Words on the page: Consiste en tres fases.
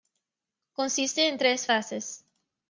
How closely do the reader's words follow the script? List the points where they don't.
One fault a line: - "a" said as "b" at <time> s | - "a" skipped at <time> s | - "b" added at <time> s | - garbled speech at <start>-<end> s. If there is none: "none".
none